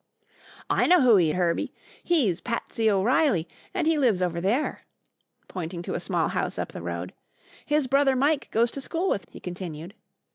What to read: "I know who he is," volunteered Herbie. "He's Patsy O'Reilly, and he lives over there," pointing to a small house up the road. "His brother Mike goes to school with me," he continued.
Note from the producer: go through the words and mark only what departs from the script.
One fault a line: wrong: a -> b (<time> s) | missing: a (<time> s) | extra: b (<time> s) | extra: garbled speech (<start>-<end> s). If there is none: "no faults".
missing: is volunteered (1.3 s)
missing: me (9.3 s)